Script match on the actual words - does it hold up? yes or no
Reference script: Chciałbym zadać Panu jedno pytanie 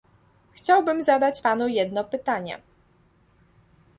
yes